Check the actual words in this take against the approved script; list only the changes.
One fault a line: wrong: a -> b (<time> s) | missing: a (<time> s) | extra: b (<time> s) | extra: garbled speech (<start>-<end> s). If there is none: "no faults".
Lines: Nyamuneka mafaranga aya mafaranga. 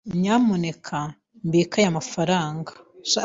wrong: mafaranga -> mbike (1.4 s)